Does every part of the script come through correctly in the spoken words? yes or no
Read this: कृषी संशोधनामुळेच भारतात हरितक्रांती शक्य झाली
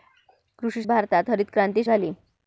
no